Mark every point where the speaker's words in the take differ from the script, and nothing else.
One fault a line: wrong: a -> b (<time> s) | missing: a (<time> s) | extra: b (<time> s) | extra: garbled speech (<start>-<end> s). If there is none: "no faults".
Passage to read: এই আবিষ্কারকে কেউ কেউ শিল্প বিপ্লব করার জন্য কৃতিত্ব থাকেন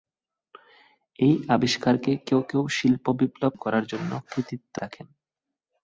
no faults